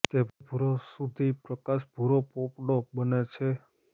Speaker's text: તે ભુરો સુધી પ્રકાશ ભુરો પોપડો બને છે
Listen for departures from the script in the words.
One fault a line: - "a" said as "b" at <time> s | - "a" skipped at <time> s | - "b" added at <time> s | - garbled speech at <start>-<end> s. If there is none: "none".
none